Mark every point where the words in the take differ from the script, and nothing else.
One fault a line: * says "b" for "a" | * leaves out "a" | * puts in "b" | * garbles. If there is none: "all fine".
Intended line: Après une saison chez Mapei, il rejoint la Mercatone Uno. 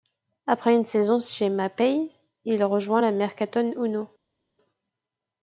all fine